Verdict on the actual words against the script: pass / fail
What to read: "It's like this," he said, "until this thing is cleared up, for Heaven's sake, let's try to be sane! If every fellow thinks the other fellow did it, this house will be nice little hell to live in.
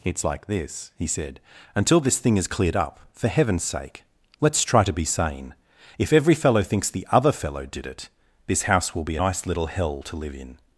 pass